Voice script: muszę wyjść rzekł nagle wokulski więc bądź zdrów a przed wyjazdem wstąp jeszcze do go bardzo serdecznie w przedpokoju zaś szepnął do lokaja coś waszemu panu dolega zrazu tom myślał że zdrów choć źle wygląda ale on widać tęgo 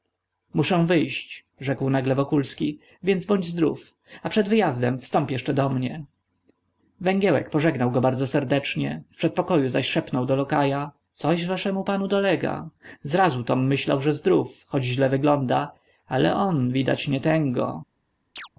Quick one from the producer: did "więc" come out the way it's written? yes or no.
yes